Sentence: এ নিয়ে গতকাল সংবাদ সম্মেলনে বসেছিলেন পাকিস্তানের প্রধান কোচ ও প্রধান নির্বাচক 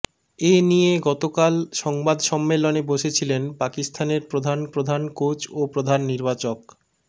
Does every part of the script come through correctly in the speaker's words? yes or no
no